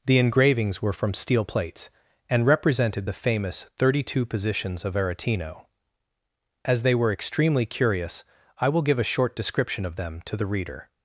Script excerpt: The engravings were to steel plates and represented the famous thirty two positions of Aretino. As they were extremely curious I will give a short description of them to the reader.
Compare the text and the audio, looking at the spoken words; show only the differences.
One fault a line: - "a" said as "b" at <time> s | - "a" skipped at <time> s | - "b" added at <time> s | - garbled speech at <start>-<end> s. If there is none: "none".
- "to" said as "from" at 0.9 s